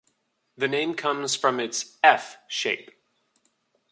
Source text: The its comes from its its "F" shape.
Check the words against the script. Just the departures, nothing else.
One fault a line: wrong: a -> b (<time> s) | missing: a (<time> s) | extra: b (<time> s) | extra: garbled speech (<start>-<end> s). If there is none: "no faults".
wrong: its -> name (0.7 s)
missing: its (2.0 s)